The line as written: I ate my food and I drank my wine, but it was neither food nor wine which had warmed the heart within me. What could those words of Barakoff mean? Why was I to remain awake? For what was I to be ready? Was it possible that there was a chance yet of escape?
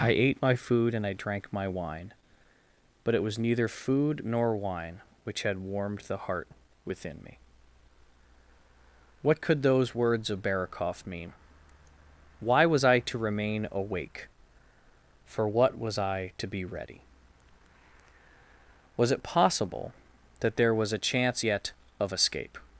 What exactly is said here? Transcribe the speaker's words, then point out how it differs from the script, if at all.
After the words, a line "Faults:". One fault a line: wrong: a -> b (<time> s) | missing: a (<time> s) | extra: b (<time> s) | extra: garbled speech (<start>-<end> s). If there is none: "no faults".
I ate my food and I drank my wine, but it was neither food nor wine which had warmed the heart within me. What could those words of Barakoff mean? Why was I to remain awake? For what was I to be ready? Was it possible that there was a chance yet of escape?
Faults:
no faults